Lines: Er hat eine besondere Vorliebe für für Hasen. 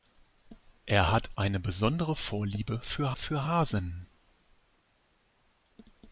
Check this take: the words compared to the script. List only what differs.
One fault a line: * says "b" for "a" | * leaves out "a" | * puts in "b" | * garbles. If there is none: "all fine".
all fine